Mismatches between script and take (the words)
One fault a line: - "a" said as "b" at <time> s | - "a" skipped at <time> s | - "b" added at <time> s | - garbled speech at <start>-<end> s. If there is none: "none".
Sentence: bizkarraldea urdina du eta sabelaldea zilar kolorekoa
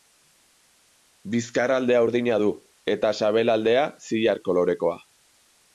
none